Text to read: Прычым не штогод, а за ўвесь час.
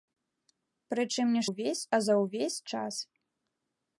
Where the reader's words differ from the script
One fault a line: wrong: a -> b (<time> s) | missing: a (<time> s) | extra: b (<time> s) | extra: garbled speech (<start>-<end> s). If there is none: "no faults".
wrong: штогод -> ўвесь (1.5 s)